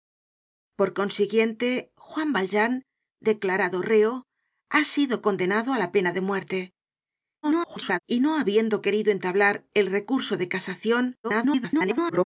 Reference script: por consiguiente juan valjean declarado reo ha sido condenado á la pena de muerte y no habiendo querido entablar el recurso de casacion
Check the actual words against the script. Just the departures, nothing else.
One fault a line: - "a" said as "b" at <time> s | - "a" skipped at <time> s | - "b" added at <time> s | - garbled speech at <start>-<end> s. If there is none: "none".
- garbled speech at 7.4-8.0 s
- garbled speech at 11.2-12.2 s